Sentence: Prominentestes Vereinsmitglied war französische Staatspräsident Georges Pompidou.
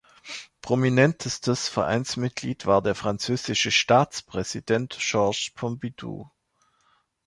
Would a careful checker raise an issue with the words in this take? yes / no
yes